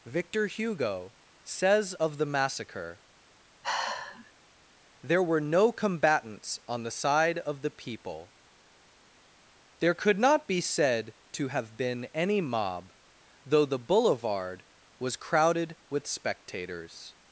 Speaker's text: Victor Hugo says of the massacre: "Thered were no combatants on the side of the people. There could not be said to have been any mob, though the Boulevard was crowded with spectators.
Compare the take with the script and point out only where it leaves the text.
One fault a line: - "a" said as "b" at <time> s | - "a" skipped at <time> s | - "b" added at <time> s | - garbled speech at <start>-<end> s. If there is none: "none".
- "Thered" said as "There" at 5.0 s